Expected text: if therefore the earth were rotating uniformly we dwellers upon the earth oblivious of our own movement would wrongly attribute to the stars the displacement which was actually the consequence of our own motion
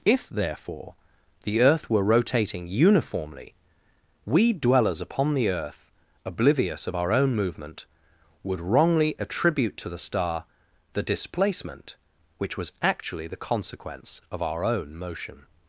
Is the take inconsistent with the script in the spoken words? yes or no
yes